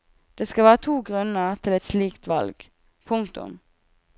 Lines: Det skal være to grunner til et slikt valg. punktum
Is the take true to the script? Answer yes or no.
yes